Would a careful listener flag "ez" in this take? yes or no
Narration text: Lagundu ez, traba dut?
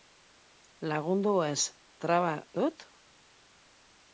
no